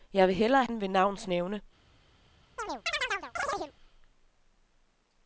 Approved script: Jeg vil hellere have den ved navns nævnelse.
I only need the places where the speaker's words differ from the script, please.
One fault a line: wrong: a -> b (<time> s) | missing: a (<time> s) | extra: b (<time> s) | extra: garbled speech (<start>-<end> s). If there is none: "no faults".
missing: have (0.7 s)